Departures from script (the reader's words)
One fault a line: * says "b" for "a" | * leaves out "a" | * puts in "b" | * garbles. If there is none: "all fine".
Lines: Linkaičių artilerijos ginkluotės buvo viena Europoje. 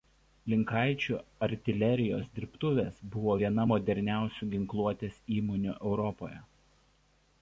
* says "dirbtuvės" for "ginkluotės"
* puts in "moderniausių ginkluotės įmonių"